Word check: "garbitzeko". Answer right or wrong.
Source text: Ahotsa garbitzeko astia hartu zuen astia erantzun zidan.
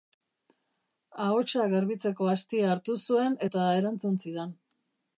right